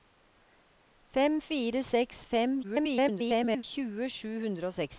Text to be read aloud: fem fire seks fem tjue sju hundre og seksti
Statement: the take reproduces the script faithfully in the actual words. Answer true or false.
false